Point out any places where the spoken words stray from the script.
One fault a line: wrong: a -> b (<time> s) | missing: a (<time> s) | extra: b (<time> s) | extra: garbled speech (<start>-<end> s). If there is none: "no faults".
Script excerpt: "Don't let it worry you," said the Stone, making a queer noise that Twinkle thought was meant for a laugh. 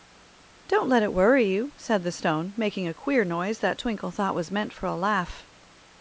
no faults